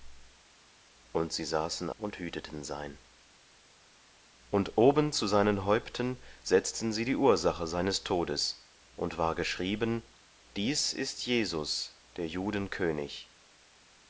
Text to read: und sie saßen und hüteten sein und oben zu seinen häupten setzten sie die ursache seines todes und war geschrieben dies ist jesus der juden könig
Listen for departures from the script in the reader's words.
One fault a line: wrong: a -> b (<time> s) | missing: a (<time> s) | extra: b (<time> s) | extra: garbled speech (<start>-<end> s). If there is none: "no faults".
no faults